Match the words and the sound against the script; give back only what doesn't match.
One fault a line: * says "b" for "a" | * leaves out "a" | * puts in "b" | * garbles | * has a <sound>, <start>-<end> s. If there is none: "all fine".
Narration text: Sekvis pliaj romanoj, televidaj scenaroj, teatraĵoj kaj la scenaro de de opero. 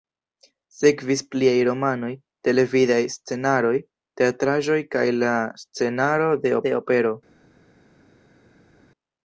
all fine